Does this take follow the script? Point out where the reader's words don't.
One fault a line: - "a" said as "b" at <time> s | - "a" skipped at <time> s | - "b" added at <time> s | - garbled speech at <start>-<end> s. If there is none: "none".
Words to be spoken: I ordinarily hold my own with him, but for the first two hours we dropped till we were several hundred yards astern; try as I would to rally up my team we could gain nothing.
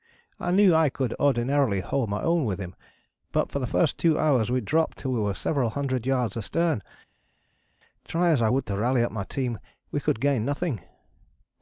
- "knew I could" added at 0.5 s